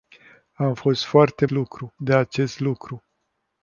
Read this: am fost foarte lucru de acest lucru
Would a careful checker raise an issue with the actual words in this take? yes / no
no